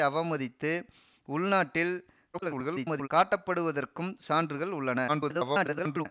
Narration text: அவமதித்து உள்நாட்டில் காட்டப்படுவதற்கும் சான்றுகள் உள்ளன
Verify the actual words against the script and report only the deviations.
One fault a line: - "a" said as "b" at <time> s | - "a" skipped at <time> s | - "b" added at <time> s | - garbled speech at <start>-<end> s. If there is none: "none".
- garbled speech at 2.3-3.1 s
- garbled speech at 5.1-6.1 s